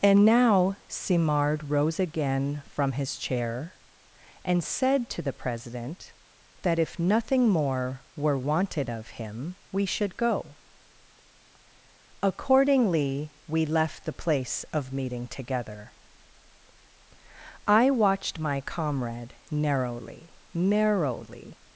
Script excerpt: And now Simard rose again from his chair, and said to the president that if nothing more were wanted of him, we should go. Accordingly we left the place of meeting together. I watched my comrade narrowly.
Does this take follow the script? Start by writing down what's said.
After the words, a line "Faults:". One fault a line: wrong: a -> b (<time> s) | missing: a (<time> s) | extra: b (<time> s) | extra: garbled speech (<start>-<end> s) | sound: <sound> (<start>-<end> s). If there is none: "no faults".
And now Simard rose again from his chair, and said to the president that if nothing more were wanted of him, we should go. Accordingly we left the place of meeting together. I watched my comrade narrowly narrowly.
Faults:
extra: narrowly (20.5 s)